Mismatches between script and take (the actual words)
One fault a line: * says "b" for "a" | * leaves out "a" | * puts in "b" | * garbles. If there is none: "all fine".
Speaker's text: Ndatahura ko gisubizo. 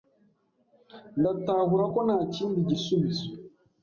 * puts in "ntakindi"